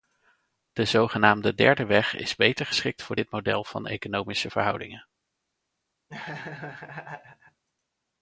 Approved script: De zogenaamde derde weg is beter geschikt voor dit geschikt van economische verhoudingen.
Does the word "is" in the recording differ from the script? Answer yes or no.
no